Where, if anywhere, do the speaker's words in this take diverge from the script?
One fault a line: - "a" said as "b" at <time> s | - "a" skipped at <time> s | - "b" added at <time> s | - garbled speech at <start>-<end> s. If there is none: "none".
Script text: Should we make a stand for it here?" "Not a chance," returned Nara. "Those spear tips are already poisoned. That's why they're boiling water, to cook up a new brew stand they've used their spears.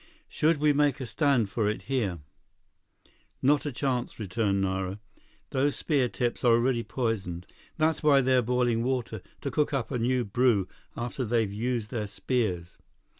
- "stand" said as "after" at 10.9 s